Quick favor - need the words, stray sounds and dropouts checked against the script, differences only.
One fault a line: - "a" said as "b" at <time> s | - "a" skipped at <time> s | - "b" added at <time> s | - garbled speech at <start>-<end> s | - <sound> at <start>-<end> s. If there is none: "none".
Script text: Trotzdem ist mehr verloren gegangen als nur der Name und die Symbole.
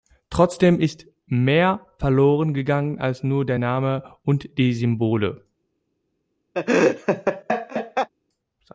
- laugh at 6.5-8.1 s